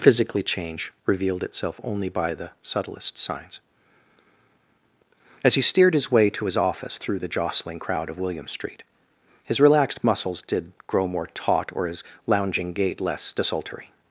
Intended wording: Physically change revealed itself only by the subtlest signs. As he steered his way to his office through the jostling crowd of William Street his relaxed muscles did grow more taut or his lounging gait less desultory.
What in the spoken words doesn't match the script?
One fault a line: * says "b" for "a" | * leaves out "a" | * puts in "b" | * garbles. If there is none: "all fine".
all fine